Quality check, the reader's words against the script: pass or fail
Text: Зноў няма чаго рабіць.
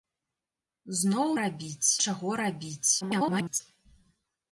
fail